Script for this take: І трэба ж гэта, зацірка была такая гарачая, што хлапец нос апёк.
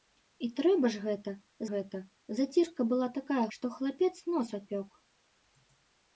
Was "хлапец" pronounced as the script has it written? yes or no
yes